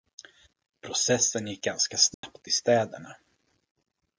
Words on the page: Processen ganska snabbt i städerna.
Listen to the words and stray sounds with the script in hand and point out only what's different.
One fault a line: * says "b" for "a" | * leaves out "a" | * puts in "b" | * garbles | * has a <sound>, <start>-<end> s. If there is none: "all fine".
* puts in "gick"
* has a dropout, 2.1-2.2 s